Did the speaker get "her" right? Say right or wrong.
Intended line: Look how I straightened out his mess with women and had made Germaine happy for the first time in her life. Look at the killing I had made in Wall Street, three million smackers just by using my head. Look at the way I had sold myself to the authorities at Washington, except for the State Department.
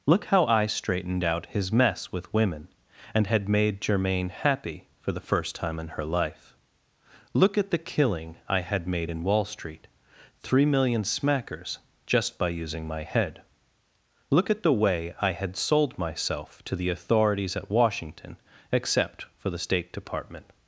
right